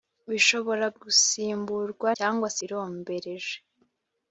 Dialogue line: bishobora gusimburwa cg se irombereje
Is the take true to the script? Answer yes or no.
yes